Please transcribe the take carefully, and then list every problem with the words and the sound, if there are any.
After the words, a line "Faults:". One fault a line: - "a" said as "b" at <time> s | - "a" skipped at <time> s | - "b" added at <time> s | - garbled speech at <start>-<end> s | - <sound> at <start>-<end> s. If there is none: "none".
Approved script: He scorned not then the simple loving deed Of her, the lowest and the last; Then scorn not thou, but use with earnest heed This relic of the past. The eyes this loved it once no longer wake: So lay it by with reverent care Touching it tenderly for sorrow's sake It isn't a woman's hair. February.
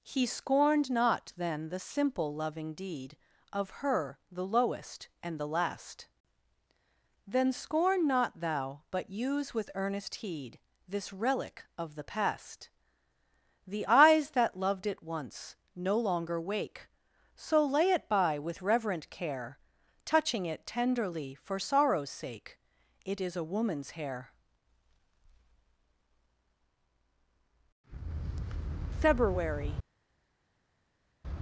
He scorned not then the simple loving deed Of her, the lowest and the last; Then scorn not thou, but use with earnest heed This relic of the past. The eyes that loved it once no longer wake: So lay it by with reverent care Touching it tenderly for sorrow's sake It is a woman's hair. February.
Faults:
- "this" said as "that" at 14.3 s
- "isn't" said as "is" at 23.2 s